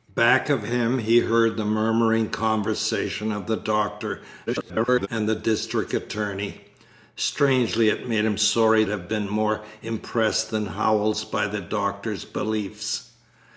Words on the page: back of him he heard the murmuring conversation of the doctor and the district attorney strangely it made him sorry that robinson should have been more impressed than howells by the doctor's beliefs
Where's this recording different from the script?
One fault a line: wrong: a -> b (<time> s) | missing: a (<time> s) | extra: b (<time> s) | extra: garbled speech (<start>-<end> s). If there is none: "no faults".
extra: garbled speech (4.5-5.1 s)
missing: that robinson should (8.8 s)